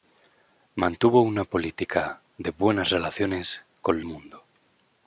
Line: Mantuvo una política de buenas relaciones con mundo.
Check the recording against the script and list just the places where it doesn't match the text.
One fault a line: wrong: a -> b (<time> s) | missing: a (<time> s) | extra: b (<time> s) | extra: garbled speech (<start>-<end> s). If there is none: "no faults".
no faults